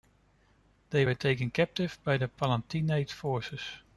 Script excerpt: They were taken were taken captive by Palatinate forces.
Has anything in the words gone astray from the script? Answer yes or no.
yes